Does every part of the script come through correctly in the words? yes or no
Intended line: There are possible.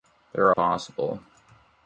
yes